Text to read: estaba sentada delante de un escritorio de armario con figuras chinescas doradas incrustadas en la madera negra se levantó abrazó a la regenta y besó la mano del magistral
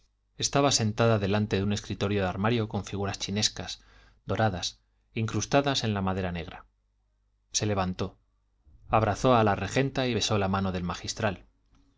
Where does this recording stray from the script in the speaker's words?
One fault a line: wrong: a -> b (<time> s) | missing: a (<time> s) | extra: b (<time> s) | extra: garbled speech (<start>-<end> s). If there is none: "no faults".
no faults